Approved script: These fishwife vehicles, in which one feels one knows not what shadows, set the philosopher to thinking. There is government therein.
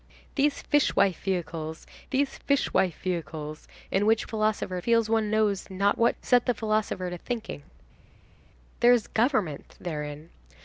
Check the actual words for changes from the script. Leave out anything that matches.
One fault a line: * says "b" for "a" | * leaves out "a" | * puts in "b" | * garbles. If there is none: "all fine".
* puts in "these fishwife vehicles"
* says "philosopher" for "one"
* leaves out "shadows"